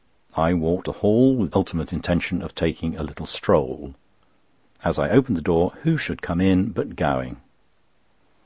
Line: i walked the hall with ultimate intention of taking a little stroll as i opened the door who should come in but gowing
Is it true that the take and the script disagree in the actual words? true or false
false